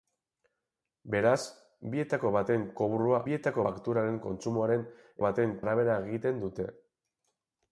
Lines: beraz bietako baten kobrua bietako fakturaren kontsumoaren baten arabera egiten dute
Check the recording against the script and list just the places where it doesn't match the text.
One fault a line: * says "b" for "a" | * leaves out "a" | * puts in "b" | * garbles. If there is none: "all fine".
all fine